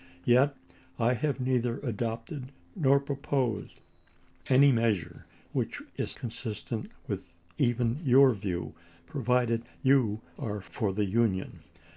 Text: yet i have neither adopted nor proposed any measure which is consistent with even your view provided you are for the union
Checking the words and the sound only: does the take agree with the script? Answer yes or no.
yes